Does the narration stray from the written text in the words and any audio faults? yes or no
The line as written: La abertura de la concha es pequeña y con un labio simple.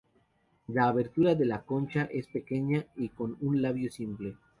no